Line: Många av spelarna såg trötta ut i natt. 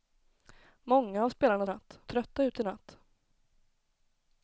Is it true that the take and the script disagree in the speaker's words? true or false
true